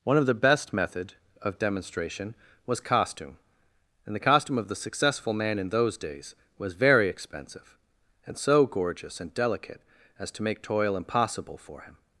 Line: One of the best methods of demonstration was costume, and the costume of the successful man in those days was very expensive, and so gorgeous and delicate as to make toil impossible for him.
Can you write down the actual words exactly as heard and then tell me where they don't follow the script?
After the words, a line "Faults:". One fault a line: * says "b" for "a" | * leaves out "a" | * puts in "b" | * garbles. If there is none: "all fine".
One of the best method of demonstration was costume, and the costume of the successful man in those days was very expensive, and so gorgeous and delicate as to make toil impossible for him.
Faults:
* says "method" for "methods"